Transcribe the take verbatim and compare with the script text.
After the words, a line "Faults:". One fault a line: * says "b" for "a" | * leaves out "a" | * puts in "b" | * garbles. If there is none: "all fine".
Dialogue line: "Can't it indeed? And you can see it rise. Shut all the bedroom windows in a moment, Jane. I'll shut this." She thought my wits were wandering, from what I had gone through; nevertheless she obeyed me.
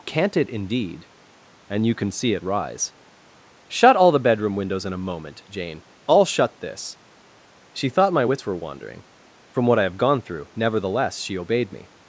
"Can't it indeed? And you can see it rise. Shut all the bedroom windows in a moment, Jane. I'll shut this." She thought my wits were wandering, from what I have gone through; nevertheless she obeyed me.
Faults:
* says "have" for "had"